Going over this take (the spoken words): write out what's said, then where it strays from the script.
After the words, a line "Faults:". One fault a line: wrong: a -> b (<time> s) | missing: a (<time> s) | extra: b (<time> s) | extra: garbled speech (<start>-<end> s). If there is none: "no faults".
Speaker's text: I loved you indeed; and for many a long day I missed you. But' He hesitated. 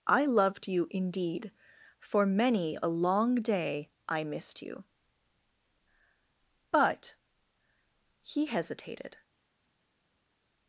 I loved you indeed; for many a long day I missed you. But' He hesitated.
Faults:
missing: and (1.5 s)